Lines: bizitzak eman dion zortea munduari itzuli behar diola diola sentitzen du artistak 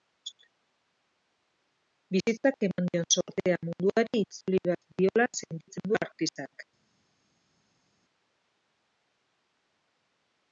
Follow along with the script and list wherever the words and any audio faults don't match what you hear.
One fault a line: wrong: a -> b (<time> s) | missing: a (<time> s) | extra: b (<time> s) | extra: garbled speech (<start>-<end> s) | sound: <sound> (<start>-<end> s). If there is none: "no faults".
missing: diola (5.3 s)